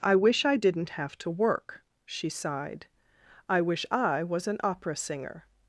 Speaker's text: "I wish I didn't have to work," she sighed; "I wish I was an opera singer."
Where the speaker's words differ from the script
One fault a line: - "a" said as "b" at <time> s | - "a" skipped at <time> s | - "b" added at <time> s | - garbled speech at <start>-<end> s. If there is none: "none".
none